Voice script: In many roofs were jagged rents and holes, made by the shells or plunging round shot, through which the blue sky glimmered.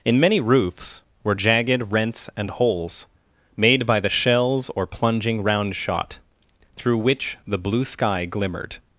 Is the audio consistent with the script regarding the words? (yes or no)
yes